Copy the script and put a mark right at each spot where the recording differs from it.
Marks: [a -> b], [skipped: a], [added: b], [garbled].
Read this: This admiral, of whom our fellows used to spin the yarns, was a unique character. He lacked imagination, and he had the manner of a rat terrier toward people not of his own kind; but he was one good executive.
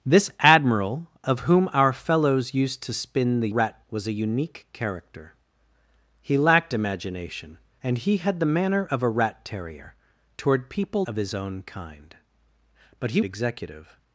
This admiral, of whom our fellows used to spin the [yarns, -> rat] was a unique character. He lacked imagination, and he had the manner of a rat terrier toward people [skipped: not] of his own kind; but he [skipped: was one good] executive.